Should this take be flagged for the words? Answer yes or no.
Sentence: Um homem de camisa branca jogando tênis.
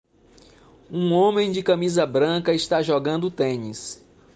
yes